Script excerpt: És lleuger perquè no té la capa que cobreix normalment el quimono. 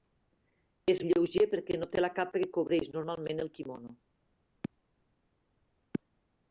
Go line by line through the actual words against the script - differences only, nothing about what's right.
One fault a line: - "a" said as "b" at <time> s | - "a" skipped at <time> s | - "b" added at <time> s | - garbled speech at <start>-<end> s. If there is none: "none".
none